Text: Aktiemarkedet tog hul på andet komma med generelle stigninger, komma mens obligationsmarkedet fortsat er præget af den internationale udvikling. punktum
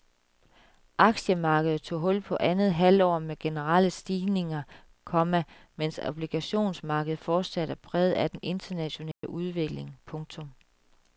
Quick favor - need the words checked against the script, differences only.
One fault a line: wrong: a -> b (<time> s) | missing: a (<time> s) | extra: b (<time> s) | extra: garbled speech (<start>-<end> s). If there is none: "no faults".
wrong: komma -> halvår (2.7 s)